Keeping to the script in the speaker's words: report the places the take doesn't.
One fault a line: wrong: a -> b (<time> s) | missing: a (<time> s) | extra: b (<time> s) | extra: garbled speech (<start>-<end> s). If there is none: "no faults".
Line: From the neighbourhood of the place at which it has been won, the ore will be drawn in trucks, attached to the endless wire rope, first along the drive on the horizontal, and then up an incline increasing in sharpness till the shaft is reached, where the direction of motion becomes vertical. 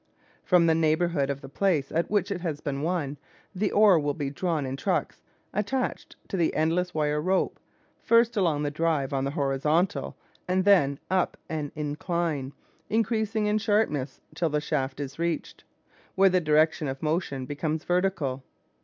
no faults